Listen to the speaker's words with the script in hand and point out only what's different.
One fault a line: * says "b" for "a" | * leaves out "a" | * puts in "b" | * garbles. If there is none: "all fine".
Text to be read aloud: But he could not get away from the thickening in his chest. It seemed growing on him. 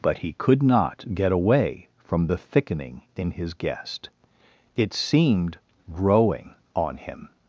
* says "guest" for "chest"